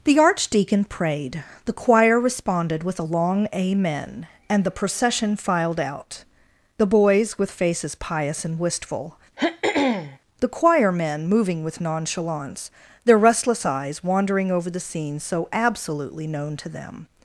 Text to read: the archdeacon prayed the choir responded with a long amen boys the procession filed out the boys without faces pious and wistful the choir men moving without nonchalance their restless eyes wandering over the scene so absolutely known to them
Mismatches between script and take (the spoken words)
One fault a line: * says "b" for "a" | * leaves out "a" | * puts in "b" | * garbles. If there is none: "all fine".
* says "and" for "boys"
* says "with" for "without"
* says "with" for "without"